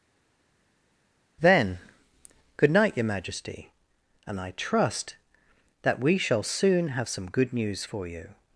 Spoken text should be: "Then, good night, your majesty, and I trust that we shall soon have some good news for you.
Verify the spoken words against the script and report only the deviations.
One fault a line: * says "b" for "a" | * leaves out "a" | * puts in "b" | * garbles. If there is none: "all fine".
all fine